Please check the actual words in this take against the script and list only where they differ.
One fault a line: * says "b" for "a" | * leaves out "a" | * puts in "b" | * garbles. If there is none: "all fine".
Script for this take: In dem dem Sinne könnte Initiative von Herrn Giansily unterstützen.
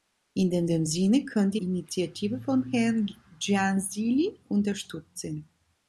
all fine